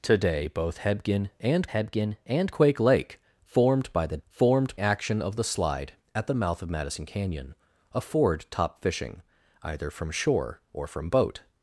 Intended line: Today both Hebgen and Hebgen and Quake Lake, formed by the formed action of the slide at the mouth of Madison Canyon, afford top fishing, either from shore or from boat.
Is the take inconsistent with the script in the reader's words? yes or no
no